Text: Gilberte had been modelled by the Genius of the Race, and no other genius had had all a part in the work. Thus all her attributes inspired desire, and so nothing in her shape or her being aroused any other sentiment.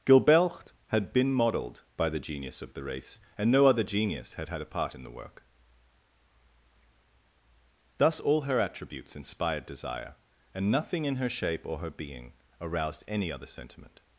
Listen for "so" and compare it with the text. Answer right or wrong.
wrong